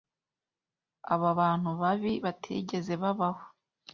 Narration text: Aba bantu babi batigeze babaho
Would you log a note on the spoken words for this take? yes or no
no